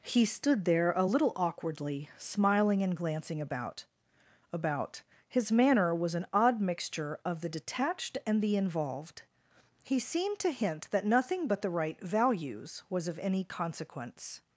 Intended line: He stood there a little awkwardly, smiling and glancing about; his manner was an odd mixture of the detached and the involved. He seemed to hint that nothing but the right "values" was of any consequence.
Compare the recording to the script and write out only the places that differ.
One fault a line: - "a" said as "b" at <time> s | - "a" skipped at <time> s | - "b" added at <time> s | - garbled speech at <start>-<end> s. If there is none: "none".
- "about" added at 4.5 s